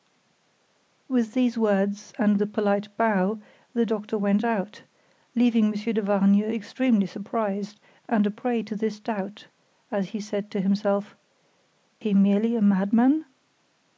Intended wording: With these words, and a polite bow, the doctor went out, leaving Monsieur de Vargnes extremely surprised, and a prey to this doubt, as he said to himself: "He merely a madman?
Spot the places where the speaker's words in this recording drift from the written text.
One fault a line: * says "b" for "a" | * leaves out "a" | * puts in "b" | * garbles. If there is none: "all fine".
all fine